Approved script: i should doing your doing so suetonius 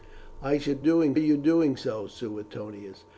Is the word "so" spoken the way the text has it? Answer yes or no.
yes